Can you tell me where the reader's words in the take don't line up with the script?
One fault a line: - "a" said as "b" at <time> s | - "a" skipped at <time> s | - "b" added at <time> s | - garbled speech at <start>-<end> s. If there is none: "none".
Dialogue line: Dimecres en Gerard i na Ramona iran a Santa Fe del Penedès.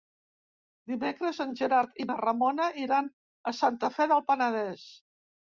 none